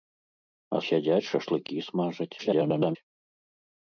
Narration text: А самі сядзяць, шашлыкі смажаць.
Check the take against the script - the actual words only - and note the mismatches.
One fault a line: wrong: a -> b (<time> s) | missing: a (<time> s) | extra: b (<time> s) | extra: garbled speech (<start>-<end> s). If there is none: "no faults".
missing: самі (0.8 s)
extra: garbled speech (2.4-3.0 s)